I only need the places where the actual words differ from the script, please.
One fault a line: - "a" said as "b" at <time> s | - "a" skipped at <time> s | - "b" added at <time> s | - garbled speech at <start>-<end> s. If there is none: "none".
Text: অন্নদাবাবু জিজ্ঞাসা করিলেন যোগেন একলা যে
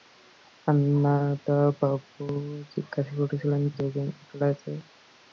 none